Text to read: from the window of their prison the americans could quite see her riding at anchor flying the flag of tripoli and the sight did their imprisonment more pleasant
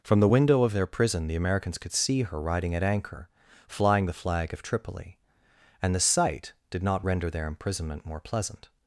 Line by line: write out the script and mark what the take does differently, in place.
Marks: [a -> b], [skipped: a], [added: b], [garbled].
from the window of their prison the americans could [skipped: quite] see her riding at anchor flying the flag of tripoli and the sight did [added: not render] their imprisonment more pleasant